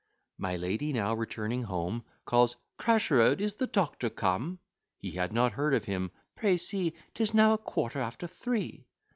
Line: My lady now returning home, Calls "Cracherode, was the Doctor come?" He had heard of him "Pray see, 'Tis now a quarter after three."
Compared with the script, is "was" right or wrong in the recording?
wrong